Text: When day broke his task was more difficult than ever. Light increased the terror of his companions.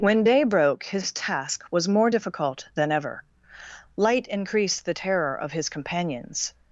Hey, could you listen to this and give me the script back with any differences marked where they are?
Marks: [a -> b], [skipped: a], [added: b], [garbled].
When day broke his task was more difficult than ever. Light increased the terror of his companions.